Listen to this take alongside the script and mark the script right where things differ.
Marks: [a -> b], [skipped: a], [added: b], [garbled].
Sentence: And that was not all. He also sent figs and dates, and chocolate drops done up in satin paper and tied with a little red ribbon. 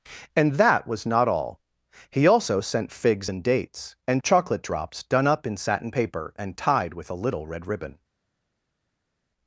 And that was not all. He also sent figs and dates, and chocolate drops done up in satin paper and tied with a little red ribbon.